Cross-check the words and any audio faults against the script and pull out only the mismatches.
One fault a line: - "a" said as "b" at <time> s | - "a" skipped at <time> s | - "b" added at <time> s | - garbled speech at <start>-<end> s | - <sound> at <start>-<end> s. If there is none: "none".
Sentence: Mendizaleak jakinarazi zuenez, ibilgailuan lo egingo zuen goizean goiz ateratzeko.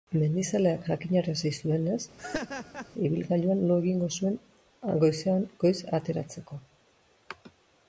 - laugh at 2.2-2.9 s